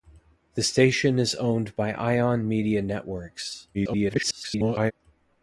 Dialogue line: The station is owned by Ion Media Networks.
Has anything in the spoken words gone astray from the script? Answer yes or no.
yes